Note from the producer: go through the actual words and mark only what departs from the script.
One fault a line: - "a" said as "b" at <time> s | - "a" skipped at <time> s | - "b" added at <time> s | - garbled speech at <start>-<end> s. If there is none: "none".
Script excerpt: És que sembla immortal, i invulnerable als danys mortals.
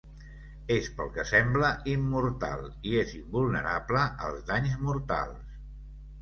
- "pel" added at 1.0 s
- "és" added at 3.0 s